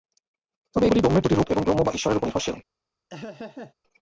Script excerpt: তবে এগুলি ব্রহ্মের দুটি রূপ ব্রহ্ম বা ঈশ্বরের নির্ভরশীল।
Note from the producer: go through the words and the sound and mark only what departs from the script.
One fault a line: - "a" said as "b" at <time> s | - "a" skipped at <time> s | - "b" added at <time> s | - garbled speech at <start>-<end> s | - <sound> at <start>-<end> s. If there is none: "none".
- "এবং" added at 1.5 s
- "উপর" added at 2.2 s
- laugh at 3.1-3.7 s